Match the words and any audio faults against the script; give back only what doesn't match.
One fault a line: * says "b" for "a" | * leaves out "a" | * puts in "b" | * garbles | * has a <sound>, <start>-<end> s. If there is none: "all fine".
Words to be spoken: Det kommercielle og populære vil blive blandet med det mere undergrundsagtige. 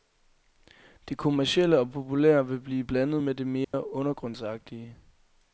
* has a dropout, 3.6-3.7 s